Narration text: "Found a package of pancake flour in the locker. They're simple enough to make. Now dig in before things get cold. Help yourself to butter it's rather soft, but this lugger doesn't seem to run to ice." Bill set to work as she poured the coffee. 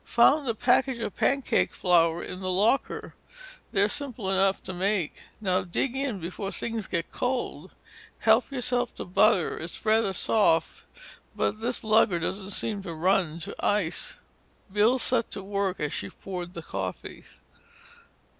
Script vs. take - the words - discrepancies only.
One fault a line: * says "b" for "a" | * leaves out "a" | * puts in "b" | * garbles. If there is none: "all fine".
all fine